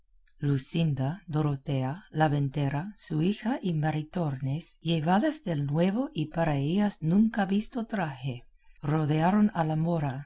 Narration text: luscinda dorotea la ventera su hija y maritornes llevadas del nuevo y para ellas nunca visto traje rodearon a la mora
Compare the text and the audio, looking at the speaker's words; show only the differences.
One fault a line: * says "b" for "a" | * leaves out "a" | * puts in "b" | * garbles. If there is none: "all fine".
all fine